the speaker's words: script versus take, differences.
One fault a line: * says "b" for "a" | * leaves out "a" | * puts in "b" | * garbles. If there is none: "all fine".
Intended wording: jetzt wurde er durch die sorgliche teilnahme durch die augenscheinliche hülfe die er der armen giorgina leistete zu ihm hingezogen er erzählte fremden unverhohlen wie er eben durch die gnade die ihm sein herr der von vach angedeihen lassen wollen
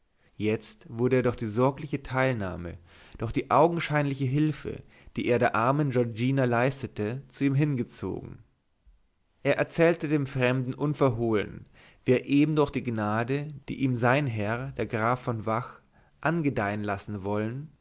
* puts in "dem"
* puts in "graf"